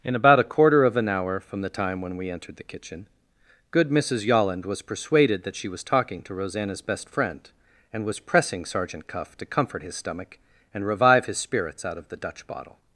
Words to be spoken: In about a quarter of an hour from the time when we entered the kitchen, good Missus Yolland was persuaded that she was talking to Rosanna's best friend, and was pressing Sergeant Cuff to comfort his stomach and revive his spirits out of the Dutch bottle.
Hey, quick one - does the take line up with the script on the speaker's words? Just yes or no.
yes